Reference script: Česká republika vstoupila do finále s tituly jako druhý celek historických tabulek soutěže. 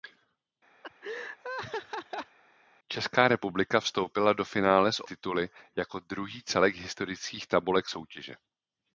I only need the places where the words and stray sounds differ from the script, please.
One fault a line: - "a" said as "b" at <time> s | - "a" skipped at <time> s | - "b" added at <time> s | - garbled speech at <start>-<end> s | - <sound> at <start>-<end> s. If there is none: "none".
- laugh at 0.8-2.4 s